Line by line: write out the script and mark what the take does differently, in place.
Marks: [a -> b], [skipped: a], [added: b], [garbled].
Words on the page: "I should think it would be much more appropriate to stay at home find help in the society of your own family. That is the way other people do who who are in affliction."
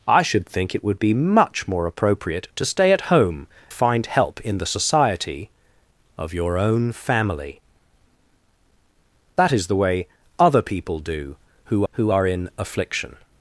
"I should think it would be much more appropriate to stay at home find help in the society of your own family. That is the way other people do who who are in affliction."